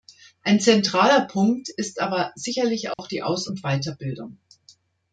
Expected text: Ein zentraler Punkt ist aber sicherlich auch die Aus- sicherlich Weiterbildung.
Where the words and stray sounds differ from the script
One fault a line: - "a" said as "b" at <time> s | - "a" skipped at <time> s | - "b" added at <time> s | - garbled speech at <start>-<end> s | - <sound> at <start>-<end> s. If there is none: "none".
- dropout at 2.9-3.0 s
- "sicherlich" said as "und" at 3.5 s